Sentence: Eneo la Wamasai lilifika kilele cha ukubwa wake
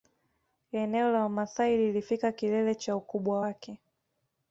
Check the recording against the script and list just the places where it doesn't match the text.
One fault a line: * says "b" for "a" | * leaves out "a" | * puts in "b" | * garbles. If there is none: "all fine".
all fine